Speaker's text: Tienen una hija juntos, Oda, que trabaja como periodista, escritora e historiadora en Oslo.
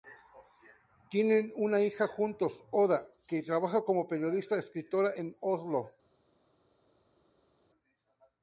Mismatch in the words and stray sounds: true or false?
true